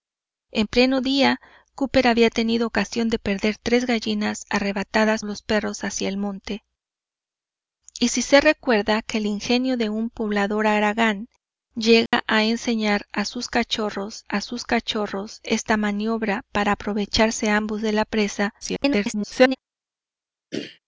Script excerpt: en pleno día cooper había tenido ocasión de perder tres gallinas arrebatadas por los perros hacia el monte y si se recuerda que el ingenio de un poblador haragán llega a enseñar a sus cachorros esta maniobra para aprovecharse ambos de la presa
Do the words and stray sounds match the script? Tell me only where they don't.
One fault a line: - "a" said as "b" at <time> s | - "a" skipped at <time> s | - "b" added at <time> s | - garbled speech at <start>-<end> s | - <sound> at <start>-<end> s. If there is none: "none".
- "por" skipped at 5.2 s
- dropout at 12.1-12.1 s
- "a sus cachorros" added at 14.3 s
- garbled speech at 18.6-19.6 s
- throat clearing at 20.5-20.8 s